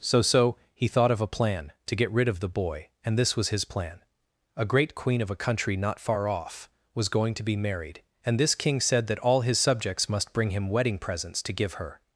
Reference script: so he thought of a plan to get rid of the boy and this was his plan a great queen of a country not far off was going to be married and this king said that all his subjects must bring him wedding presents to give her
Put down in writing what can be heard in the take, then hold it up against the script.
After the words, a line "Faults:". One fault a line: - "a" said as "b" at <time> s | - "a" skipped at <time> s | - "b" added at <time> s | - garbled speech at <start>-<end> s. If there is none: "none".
so so he thought of a plan to get rid of the boy and this was his plan a great queen of a country not far off was going to be married and this king said that all his subjects must bring him wedding presents to give her
Faults:
- "so" added at 0.2 s